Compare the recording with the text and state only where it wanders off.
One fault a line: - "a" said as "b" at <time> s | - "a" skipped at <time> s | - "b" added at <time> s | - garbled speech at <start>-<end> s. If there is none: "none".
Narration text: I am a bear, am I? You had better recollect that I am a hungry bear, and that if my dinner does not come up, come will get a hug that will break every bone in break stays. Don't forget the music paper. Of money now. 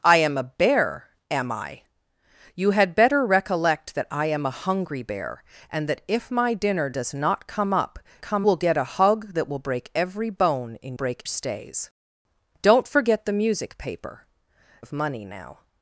none